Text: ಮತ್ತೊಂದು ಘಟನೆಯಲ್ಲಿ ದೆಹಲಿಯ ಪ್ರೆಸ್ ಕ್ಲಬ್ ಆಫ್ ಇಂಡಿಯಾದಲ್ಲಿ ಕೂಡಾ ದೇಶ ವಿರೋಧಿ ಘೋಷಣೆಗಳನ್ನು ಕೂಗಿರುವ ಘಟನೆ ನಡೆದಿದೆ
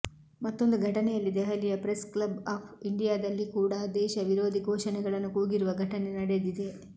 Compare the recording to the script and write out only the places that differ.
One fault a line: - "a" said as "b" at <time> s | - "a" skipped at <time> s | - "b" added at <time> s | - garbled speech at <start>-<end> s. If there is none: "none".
none